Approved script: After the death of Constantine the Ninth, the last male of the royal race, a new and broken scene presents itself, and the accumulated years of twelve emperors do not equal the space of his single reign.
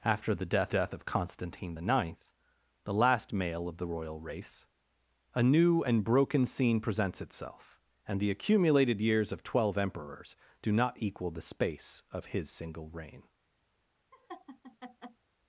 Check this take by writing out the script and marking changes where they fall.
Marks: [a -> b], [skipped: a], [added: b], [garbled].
After the death [added: death] of Constantine the Ninth, the last male of the royal race, a new and broken scene presents itself, and the accumulated years of twelve emperors do not equal the space of his single reign.